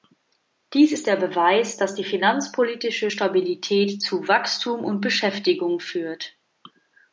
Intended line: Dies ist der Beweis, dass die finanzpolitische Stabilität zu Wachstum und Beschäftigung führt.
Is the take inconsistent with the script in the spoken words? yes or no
no